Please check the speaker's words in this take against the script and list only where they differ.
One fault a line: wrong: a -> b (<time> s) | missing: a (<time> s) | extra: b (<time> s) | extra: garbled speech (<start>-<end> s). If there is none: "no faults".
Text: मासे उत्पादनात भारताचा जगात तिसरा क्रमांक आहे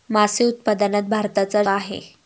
missing: जगात तिसरा क्रमांक (1.6 s)